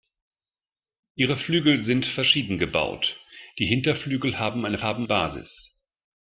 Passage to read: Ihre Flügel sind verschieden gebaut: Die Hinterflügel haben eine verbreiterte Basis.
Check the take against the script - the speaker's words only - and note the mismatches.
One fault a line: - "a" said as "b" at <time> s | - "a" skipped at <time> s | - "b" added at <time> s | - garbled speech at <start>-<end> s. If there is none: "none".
- "verbreiterte" said as "haben" at 4.8 s